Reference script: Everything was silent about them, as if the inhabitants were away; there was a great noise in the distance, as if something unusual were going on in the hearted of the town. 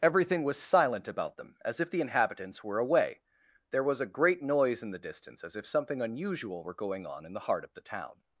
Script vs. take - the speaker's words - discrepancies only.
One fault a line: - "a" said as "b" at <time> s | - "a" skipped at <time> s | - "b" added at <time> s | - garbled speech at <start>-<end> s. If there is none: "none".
- "hearted" said as "heart" at 7.5 s